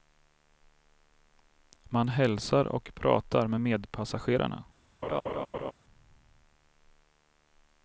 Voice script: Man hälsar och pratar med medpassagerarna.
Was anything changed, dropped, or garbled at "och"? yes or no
no